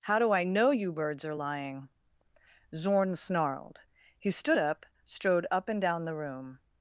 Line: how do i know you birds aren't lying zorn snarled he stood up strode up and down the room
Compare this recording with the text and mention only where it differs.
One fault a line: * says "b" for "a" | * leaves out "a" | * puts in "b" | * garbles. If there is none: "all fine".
* says "are" for "aren't"